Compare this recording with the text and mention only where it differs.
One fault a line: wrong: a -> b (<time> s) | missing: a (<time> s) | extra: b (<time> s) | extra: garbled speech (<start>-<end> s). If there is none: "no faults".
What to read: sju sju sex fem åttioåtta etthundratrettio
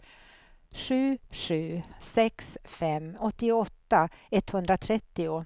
no faults